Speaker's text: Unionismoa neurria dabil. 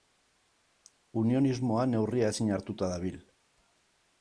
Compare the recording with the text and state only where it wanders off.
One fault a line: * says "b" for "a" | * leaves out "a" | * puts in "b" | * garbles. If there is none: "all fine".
* puts in "ezin hartuta"